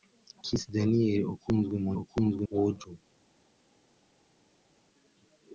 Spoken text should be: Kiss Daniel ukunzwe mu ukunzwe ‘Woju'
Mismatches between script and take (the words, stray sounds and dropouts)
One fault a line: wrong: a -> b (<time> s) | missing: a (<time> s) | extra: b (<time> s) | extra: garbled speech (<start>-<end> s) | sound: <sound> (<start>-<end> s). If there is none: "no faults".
no faults